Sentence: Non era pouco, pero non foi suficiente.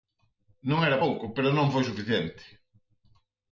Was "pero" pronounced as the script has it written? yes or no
yes